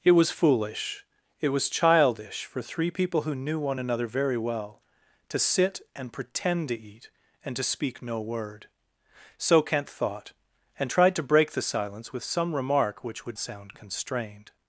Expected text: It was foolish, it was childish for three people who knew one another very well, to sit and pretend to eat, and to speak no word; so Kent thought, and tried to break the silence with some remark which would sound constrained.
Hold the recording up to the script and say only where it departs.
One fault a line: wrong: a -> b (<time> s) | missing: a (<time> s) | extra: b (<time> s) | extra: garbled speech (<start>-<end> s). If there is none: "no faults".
no faults